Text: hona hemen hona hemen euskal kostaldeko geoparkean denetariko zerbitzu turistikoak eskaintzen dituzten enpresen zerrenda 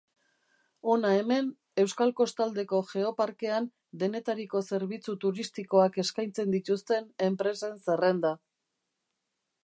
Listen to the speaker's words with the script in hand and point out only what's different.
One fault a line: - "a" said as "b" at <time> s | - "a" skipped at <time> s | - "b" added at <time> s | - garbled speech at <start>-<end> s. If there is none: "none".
- "hona hemen" skipped at 1.5 s